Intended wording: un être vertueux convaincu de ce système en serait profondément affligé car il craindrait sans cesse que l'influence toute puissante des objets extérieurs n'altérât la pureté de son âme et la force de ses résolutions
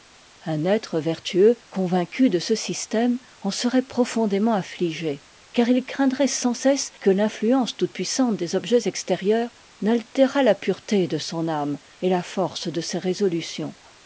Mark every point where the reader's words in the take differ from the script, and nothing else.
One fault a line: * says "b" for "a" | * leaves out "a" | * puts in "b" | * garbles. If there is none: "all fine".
all fine